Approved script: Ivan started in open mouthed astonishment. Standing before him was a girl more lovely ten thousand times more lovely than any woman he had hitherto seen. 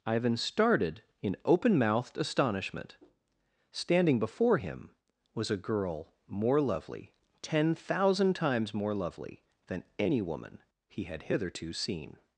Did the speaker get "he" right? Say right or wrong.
right